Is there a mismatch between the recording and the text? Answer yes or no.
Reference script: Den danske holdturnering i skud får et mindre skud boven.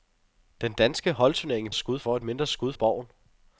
no